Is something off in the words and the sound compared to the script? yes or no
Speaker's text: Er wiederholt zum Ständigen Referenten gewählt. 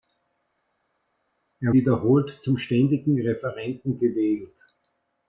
no